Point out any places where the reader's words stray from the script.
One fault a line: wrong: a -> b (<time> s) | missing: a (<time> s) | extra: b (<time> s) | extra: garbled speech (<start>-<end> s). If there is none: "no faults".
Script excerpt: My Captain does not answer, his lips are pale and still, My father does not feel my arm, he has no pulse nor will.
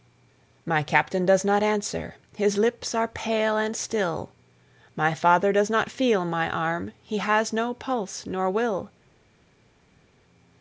no faults